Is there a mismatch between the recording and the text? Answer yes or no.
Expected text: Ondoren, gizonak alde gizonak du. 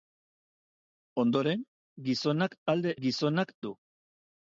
no